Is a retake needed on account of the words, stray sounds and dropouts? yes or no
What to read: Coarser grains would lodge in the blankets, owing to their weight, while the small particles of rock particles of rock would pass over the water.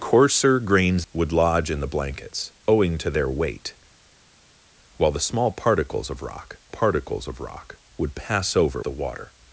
no